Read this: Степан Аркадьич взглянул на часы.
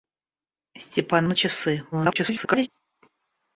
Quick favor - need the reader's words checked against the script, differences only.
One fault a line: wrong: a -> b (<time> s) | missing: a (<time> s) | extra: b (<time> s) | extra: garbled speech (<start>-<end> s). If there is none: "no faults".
missing: Аркадьич взглянул (1.3 s)
extra: garbled speech (1.9-2.7 s)